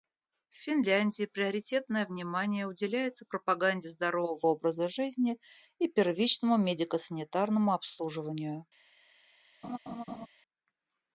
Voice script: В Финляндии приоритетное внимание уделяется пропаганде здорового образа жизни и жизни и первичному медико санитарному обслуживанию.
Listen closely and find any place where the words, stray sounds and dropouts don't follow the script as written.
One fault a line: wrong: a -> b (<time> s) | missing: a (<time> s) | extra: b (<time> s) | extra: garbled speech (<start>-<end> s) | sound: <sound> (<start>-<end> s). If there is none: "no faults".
missing: жизни и (5.9 s)
sound: laugh (9.6-10.3 s)